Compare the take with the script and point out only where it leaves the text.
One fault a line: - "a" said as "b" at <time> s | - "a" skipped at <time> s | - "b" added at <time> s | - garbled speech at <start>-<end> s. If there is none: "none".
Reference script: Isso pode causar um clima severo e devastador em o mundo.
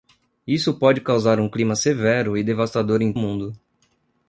none